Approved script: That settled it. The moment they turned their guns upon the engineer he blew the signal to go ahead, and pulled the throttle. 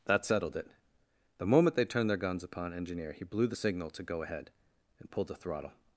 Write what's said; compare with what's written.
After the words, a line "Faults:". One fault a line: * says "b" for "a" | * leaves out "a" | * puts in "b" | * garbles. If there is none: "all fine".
That settled it. The moment they turned their guns upon engineer he blew the signal to go ahead, and pulled the throttle.
Faults:
* leaves out "the"